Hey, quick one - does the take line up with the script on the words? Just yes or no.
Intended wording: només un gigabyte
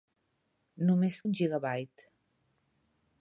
yes